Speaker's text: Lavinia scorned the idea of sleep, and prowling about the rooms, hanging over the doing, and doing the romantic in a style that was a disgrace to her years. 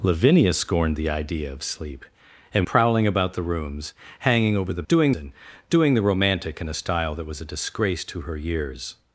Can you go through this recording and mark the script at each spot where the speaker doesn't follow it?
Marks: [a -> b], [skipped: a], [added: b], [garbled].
Lavinia scorned the idea of sleep, and prowling about the rooms, hanging over the doing, and doing the romantic in a style that was a disgrace to her years.